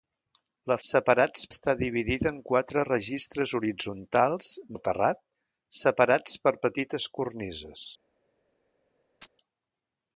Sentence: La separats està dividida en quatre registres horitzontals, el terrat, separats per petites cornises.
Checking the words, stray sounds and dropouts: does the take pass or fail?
fail